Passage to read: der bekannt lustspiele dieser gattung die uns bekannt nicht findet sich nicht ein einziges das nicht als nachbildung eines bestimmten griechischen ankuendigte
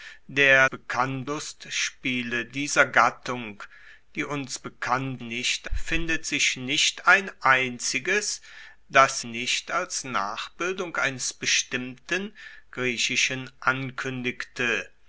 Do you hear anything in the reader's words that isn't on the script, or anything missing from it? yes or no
no